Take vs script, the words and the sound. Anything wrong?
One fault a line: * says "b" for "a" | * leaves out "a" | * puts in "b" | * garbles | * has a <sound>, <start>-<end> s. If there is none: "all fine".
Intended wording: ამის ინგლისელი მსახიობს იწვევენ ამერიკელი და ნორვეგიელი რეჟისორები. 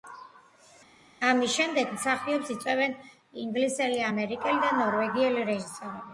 * says "შემდეგ" for "ინგლისელი"
* puts in "ინგლისელი"